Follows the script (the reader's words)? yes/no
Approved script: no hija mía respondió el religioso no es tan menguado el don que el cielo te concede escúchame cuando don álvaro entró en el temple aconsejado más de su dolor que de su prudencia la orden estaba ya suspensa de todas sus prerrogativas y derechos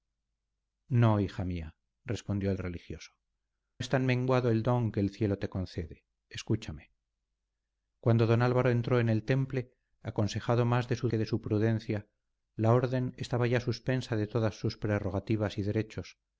no